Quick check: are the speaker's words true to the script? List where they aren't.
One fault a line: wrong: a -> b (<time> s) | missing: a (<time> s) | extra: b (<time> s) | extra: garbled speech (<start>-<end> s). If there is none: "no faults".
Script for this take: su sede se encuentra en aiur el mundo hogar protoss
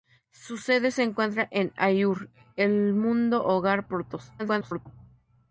extra: garbled speech (4.4-4.9 s)